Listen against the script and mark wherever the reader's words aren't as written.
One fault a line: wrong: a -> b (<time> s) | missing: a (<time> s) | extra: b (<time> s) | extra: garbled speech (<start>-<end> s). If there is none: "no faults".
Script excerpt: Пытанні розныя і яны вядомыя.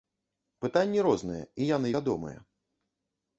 no faults